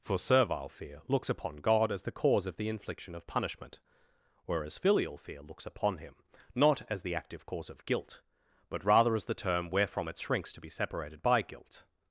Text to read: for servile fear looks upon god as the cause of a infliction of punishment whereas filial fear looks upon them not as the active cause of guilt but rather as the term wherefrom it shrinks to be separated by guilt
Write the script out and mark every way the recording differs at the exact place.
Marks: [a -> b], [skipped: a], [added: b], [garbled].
for servile fear looks upon god as the cause of [a -> the] infliction of punishment whereas filial fear looks upon [them -> him] not as the active cause of guilt but rather as the term wherefrom it shrinks to be separated by guilt